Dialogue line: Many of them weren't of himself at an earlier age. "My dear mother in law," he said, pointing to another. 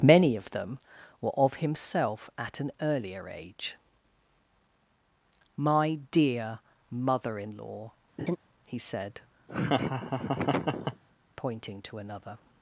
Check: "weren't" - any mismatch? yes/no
yes